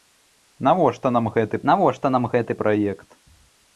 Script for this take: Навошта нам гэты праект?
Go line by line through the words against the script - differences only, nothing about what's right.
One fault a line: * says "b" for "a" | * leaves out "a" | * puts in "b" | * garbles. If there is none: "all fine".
* puts in "навошта нам гэты"